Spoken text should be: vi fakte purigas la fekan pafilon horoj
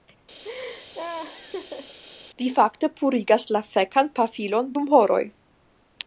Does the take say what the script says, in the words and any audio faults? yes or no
no